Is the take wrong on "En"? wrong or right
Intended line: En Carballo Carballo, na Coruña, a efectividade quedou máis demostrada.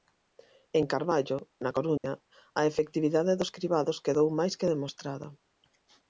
right